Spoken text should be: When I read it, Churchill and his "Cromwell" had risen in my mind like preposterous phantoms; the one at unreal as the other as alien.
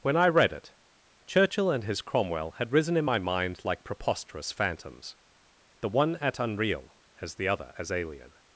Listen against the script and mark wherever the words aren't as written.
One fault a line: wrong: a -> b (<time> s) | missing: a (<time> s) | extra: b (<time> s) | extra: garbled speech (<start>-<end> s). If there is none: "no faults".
no faults